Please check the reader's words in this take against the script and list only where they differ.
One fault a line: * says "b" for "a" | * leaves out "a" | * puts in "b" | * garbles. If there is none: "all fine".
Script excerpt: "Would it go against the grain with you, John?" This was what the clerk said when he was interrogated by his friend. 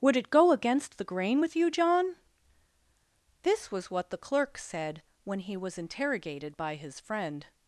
all fine